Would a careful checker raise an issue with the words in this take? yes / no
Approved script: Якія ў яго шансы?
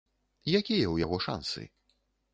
no